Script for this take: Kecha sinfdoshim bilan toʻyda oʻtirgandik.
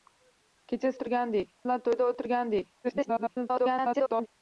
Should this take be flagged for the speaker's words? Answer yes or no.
yes